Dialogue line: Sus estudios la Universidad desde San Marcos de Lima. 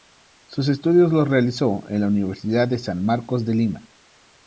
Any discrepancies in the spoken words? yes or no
yes